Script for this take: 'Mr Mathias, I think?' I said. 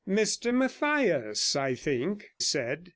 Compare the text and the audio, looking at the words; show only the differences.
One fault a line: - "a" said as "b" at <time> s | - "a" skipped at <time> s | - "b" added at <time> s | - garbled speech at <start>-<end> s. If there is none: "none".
- "I" skipped at 2.3 s